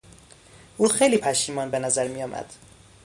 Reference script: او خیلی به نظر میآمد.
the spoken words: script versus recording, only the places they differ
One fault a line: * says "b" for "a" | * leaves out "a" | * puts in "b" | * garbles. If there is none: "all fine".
* puts in "پشیمان"